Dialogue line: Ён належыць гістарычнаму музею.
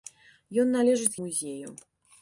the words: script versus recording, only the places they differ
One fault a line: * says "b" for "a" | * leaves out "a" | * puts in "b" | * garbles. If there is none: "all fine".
* leaves out "гістарычнаму"